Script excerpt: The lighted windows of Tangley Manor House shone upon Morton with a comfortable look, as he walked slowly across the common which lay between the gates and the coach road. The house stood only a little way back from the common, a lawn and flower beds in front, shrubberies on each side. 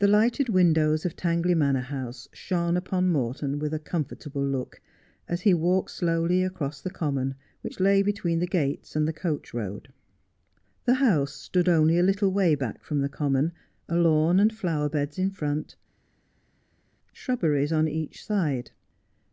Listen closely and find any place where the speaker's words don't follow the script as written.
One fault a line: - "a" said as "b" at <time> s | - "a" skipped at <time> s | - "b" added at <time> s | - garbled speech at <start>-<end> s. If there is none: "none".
none